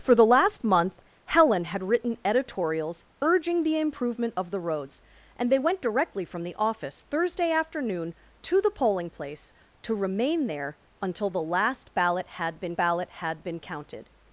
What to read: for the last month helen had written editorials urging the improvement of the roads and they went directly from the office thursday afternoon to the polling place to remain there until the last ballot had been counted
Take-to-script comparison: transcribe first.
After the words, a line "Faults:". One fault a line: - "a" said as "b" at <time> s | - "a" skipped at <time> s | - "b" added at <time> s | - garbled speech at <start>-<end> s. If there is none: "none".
for the last month helen had written editorials urging the improvement of the roads and they went directly from the office thursday afternoon to the polling place to remain there until the last ballot had been ballot had been counted
Faults:
- "ballot had been" added at 12.7 s